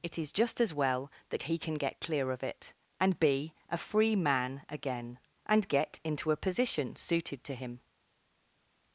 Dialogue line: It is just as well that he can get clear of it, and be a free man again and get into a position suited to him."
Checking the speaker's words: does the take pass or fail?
pass